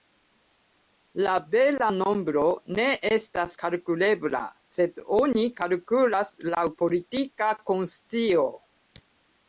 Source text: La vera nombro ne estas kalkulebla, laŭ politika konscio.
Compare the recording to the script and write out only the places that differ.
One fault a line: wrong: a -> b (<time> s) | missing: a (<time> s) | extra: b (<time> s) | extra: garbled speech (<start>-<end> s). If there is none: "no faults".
extra: sed oni kalkulas (4.8 s)